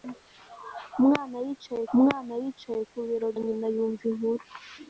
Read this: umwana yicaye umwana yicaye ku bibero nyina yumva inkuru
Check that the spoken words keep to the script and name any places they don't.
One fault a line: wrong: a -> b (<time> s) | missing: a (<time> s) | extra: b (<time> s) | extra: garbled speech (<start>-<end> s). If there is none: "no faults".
no faults